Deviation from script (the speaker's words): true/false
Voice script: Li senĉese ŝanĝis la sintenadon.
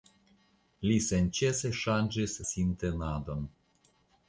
true